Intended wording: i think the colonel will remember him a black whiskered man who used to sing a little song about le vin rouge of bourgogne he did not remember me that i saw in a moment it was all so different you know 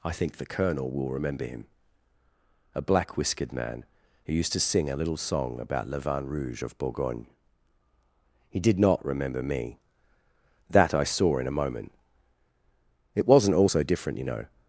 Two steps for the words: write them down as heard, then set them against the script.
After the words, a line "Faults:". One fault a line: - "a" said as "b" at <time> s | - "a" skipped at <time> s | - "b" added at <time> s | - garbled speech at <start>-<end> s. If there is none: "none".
i think the colonel will remember him a black whiskered man who used to sing a little song about le vin rouge of bourgogne he did not remember me that i saw in a moment it wasn't all so different you know
Faults:
- "was" said as "wasn't" at 13.3 s